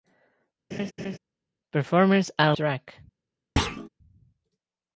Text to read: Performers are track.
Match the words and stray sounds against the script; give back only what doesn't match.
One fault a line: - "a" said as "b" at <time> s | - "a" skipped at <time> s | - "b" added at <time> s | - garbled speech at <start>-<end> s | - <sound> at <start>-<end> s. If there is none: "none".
- laugh at 0.7-1.2 s
- thud at 3.6-3.9 s